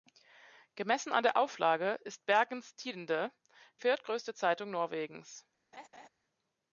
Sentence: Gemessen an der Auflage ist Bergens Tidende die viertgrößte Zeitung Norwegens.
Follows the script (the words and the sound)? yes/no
no